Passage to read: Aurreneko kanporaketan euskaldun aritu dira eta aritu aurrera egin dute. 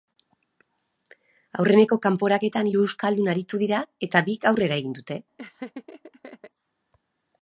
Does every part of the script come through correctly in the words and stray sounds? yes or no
no